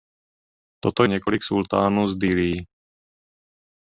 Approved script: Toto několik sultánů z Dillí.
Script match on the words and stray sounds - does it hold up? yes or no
yes